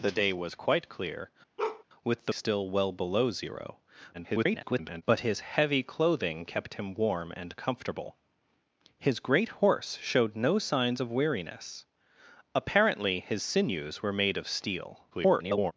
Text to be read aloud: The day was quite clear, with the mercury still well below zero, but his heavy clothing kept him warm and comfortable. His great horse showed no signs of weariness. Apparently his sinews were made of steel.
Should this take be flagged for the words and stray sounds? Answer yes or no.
yes